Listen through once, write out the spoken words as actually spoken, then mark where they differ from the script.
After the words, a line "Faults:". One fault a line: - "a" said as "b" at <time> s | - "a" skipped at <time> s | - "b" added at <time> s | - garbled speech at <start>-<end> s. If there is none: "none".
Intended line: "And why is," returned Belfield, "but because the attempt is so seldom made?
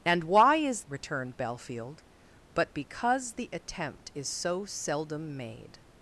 "And why is," returned Belfield, "but because the attempt is so seldom made?
Faults:
none